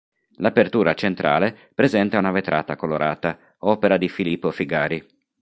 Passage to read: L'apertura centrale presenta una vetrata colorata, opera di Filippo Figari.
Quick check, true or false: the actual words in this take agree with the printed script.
true